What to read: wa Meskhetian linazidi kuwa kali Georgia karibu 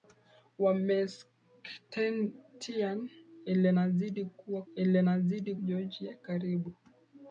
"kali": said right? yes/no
no